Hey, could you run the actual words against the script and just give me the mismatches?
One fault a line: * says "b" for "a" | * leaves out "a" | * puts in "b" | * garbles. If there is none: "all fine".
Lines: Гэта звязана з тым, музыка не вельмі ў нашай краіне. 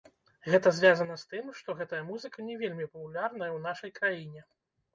* puts in "што гэтая"
* puts in "папулярная"